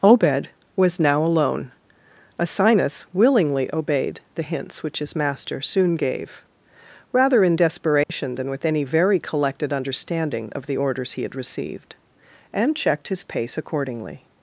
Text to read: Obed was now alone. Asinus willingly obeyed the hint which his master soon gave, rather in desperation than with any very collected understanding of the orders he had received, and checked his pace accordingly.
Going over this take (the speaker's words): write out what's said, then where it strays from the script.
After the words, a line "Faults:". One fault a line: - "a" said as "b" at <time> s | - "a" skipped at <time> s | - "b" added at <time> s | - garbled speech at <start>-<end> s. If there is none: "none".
Obed was now alone. Asinus willingly obeyed the hints which his master soon gave, rather in desperation than with any very collected understanding of the orders he had received, and checked his pace accordingly.
Faults:
- "hint" said as "hints" at 4.4 s